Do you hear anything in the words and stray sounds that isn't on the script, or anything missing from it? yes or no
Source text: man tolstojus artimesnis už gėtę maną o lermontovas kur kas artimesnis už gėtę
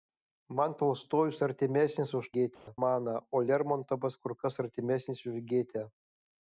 yes